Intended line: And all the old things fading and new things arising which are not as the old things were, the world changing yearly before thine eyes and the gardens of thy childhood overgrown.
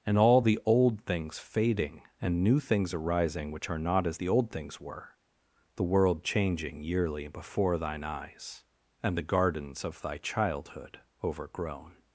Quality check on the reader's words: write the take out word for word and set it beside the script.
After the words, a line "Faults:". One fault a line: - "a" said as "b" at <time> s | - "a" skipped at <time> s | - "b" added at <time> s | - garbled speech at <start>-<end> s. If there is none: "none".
And all the old things fading and new things arising which are not as the old things were, the world changing yearly before thine eyes and the gardens of thy childhood overgrown.
Faults:
none